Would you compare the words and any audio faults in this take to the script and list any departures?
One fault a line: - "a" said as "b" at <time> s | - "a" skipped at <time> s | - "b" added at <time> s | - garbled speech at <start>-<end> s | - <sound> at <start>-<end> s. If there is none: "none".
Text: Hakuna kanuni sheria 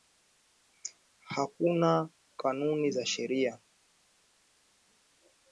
- "za" added at 2.9 s